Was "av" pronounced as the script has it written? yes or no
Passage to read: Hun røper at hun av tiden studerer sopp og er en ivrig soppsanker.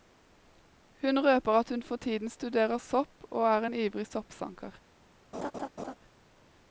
no